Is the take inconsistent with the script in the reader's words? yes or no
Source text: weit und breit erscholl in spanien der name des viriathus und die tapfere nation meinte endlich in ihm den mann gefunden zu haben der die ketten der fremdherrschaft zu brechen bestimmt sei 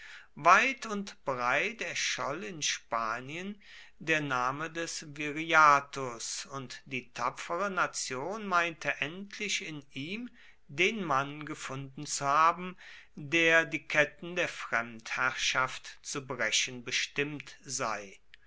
no